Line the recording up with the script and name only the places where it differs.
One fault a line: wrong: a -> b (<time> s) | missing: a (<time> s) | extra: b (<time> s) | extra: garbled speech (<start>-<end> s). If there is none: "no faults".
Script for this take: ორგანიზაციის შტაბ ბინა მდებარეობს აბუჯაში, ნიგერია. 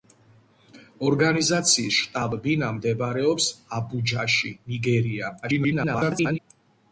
extra: garbled speech (5.4-6.4 s)